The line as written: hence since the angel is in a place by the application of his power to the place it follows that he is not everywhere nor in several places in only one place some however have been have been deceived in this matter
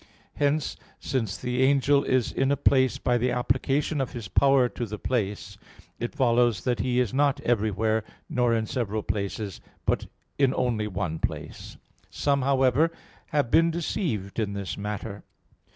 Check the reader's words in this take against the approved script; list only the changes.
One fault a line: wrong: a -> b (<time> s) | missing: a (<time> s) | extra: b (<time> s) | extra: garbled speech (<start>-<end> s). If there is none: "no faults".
extra: but (9.8 s)
missing: have been (13.7 s)